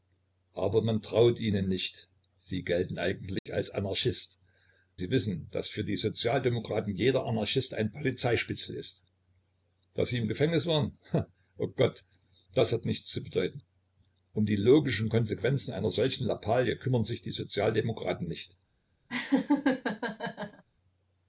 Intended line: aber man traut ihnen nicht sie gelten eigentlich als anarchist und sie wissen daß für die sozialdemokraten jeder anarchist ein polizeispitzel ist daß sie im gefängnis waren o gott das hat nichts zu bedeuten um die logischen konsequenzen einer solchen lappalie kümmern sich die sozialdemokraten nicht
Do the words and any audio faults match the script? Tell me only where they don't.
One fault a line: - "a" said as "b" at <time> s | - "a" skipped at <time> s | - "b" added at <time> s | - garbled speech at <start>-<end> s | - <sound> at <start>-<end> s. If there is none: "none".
- dropout at 3.4-3.5 s
- "und" skipped at 4.4 s
- laugh at 19.1-20.6 s